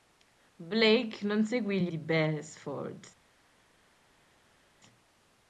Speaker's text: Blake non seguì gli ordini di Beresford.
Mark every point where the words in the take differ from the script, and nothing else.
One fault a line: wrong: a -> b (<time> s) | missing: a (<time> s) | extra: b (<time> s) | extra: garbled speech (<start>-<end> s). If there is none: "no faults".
missing: ordini (1.9 s)